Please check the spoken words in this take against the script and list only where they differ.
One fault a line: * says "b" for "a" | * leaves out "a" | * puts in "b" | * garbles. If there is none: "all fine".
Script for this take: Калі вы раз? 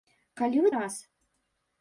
all fine